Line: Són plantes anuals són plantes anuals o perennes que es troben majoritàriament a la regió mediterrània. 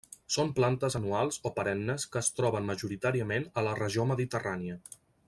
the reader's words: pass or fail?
fail